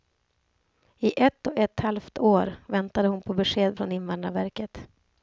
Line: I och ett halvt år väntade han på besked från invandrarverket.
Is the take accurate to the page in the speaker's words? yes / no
no